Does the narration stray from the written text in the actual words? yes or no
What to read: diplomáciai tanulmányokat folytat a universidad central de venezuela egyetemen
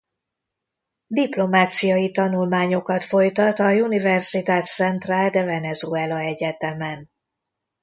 no